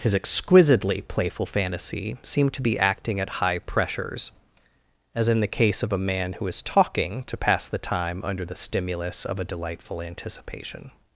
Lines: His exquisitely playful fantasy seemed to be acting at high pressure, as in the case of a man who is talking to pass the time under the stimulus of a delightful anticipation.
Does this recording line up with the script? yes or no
no